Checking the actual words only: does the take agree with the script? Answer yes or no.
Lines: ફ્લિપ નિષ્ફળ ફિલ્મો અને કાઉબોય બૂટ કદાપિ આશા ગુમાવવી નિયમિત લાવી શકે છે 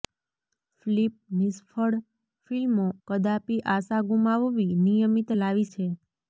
no